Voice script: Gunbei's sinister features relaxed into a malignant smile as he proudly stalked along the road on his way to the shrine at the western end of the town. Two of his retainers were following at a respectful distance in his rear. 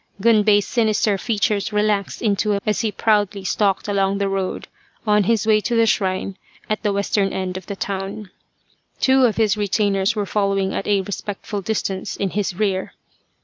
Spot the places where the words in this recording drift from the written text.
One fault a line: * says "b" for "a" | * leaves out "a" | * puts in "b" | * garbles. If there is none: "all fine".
* leaves out "malignant smile"